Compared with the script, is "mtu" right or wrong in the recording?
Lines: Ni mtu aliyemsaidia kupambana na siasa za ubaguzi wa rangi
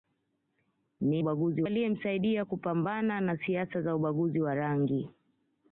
wrong